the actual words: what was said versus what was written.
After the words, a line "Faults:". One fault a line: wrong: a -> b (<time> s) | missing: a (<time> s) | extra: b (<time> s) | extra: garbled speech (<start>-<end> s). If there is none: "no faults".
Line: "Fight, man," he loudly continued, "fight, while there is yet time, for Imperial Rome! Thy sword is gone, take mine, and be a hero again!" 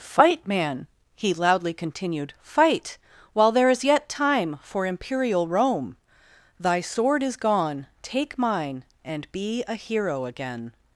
"Fight, man," he loudly continued, "fight, while there is yet time, for Imperial Rome! Thy sword is gone, take mine, and be a hero again!"
Faults:
no faults